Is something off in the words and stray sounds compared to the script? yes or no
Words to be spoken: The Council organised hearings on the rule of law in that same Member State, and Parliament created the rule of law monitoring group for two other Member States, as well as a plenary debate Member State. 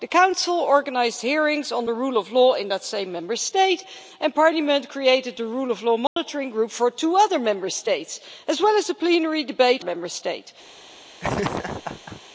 yes